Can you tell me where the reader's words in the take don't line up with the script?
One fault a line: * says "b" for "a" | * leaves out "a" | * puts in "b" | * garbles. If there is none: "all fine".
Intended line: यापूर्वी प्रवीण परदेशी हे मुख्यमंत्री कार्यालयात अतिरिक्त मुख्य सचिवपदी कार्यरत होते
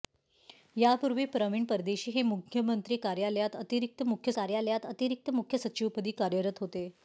* puts in "कार्यालयात अतिरिक्त मुख्य"